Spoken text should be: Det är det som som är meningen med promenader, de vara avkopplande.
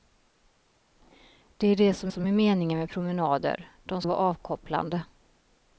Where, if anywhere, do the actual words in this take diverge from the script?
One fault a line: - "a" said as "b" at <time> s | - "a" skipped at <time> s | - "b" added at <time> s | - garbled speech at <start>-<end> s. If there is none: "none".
none